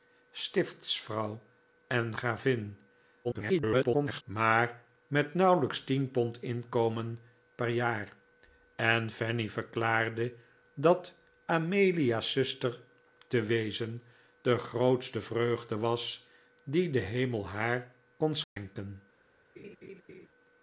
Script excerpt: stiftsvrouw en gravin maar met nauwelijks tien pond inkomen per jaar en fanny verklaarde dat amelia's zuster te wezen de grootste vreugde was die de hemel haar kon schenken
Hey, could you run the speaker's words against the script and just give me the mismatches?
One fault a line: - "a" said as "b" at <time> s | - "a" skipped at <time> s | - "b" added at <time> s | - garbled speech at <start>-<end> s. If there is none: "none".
- garbled speech at 3.2-4.2 s